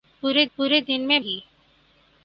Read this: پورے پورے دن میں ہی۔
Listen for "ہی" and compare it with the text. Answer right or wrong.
right